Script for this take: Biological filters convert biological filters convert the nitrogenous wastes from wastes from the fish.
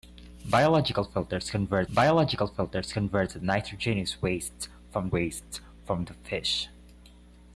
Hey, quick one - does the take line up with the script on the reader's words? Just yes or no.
yes